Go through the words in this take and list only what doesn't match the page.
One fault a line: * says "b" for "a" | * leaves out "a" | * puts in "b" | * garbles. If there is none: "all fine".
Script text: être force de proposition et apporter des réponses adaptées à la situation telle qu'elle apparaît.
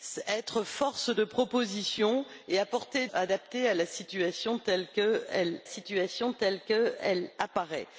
* leaves out "des réponses"
* puts in "situation telle qu'elle"